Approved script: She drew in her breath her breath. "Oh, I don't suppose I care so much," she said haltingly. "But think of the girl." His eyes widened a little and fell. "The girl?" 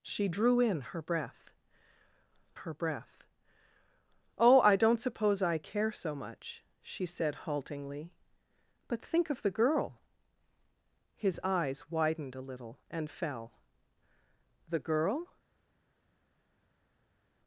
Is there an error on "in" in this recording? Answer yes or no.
no